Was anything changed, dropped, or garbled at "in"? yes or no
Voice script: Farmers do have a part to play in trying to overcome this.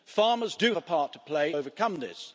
yes